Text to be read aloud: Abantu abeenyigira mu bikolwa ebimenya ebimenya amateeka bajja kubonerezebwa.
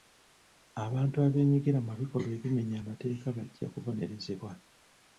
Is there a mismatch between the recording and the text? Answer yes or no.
yes